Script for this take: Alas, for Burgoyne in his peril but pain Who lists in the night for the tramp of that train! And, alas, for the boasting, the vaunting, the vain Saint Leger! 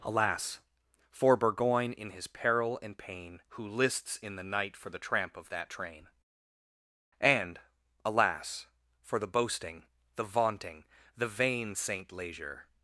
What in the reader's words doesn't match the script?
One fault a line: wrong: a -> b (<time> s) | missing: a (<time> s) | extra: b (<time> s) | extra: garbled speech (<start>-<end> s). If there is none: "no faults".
wrong: but -> and (2.8 s)